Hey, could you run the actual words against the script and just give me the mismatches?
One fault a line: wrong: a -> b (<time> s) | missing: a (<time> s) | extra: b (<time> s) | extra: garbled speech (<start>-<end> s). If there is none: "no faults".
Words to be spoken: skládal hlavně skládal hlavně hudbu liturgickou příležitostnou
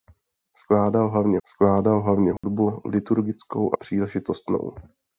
no faults